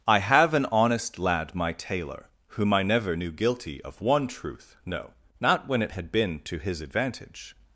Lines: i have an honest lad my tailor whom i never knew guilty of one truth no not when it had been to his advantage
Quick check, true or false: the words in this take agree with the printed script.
true